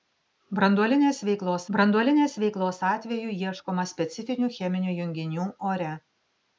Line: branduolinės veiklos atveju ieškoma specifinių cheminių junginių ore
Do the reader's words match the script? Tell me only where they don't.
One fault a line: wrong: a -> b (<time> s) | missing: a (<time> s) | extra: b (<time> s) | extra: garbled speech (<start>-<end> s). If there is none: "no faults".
extra: branduolinės veiklos (1.8 s)